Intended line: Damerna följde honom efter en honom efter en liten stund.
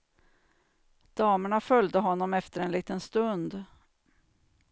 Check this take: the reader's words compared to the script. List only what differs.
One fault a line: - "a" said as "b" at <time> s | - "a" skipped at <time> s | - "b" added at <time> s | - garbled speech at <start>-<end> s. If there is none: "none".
- "honom efter en" skipped at 2.7 s